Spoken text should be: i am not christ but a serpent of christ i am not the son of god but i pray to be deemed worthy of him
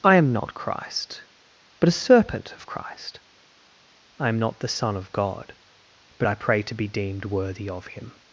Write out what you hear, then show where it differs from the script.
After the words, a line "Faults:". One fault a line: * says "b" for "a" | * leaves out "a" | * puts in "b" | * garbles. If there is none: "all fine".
i am not christ but a serpent of christ i am not the son of god but i pray to be deemed worthy of him
Faults:
all fine